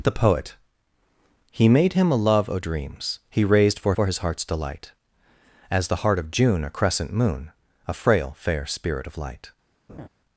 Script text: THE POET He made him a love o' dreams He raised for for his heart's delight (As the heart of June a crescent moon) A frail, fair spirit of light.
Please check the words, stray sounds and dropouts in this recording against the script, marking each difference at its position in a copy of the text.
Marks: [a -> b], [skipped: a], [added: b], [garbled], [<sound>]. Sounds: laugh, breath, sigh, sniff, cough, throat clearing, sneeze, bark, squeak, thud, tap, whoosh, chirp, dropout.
THE POET He made him a love o' dreams He raised for for his heart's delight (As the heart of June a crescent moon) A frail, fair spirit of light. [laugh]